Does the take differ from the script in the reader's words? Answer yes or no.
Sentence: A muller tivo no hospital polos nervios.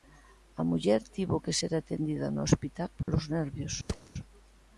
yes